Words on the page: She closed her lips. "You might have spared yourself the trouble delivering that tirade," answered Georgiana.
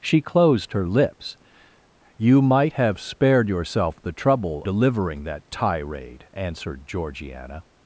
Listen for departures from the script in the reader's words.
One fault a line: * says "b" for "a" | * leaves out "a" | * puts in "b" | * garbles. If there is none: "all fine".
all fine